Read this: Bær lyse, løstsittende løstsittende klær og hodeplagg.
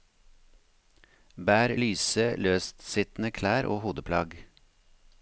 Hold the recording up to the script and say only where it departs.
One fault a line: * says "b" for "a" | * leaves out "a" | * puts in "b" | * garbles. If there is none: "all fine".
* leaves out "løstsittende"